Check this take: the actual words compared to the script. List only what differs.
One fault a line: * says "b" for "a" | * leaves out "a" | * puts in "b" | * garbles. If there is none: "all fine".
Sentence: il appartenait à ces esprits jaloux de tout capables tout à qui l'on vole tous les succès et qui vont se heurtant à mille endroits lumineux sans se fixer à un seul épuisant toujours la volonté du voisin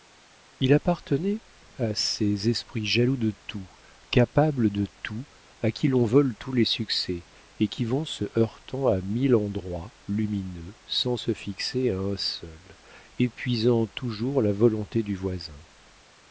* puts in "de"